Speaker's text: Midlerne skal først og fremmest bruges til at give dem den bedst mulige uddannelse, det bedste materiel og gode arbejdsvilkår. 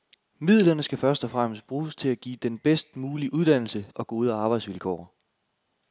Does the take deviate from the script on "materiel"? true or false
true